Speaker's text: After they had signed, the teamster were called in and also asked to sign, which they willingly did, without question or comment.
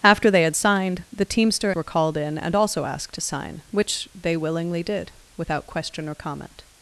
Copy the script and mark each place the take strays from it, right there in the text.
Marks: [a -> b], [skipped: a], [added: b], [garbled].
After they had signed, the teamster were called in and also asked to sign, which they willingly did, without question or comment.